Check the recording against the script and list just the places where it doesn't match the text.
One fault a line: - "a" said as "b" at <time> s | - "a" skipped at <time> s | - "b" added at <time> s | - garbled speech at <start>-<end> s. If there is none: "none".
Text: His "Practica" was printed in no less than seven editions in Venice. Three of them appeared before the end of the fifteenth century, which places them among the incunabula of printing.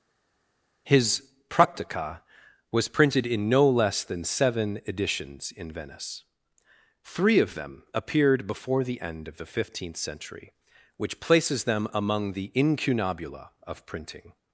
none